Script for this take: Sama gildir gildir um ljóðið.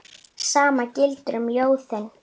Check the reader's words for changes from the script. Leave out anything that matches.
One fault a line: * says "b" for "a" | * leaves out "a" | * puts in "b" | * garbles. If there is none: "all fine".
* leaves out "gildir"